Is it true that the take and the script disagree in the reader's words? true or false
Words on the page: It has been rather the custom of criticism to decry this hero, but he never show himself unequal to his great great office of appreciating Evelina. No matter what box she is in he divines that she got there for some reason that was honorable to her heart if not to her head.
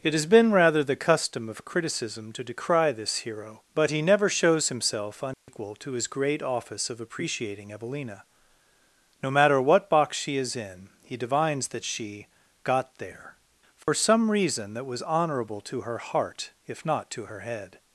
true